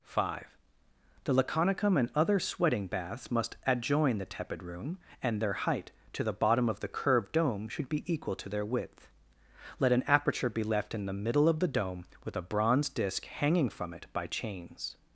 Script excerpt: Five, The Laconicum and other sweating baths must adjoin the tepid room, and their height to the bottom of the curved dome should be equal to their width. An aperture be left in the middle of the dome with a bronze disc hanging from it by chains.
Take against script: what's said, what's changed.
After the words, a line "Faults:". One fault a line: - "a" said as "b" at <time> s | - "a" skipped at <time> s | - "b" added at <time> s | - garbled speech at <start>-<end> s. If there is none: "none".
Five, The Laconicum and other sweating baths must adjoin the tepid room, and their height to the bottom of the curved dome should be equal to their width. Let an aperture be left in the middle of the dome with a bronze disc hanging from it by chains.
Faults:
- "Let" added at 9.8 s